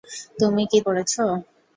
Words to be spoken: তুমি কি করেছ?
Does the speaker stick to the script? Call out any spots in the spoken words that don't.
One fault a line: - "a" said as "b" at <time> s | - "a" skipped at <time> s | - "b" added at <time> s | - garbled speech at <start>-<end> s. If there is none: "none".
none